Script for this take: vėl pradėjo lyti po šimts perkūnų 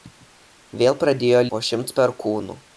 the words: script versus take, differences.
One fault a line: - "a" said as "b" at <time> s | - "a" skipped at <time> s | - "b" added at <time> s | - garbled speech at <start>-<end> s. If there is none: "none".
- "lyti" skipped at 1.4 s